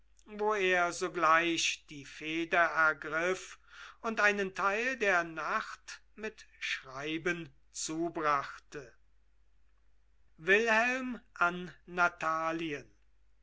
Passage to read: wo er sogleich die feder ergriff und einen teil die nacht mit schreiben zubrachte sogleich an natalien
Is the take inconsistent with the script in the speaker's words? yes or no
yes